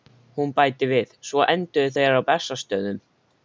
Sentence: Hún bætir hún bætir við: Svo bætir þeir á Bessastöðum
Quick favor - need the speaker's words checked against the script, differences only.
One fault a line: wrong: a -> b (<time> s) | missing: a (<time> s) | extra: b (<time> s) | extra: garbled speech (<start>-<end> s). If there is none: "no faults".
missing: hún bætir (0.9 s)
wrong: bætir -> enduðu (1.5 s)